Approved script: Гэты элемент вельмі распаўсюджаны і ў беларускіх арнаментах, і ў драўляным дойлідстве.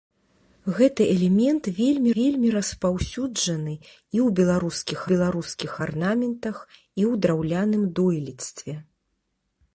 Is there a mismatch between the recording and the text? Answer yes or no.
yes